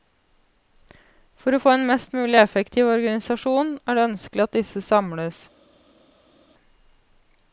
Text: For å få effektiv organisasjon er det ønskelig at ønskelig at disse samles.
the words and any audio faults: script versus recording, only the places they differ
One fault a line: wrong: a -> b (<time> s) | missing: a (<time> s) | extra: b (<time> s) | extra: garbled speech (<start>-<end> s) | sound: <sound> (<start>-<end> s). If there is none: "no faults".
extra: en mest mulig (1.7 s)
missing: ønskelig at (4.6 s)